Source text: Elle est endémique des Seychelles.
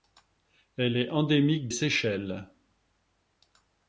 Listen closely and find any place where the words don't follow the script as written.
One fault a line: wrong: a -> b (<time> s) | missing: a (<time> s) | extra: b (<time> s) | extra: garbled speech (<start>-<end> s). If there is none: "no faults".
missing: des (1.7 s)